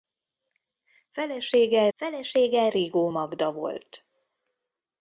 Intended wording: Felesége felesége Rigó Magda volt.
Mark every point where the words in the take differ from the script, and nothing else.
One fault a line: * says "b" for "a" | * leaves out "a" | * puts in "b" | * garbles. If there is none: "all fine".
all fine